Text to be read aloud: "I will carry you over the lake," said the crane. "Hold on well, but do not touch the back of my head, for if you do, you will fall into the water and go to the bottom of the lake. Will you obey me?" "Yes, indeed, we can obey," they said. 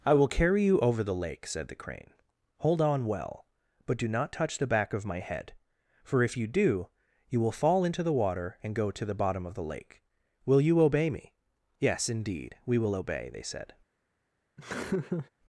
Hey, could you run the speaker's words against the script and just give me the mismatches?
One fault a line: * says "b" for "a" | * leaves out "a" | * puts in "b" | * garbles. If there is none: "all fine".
* says "will" for "can"